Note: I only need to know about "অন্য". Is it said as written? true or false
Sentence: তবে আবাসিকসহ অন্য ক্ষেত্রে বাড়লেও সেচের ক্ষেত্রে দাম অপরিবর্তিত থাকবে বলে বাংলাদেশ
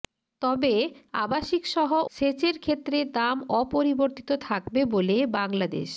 false